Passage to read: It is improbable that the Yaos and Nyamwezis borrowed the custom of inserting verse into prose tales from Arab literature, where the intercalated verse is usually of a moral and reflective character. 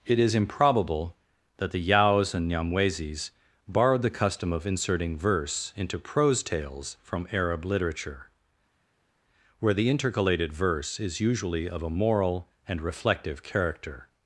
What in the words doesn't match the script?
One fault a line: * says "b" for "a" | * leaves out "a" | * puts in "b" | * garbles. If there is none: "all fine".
all fine